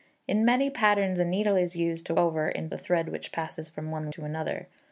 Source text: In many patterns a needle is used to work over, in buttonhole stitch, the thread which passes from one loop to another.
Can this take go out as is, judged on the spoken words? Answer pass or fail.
fail